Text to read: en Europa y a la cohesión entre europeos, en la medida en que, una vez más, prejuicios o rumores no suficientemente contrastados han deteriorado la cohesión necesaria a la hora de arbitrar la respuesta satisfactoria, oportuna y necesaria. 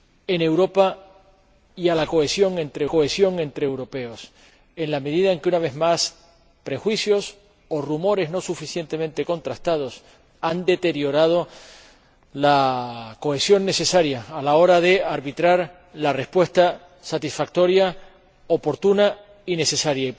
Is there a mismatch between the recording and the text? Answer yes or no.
yes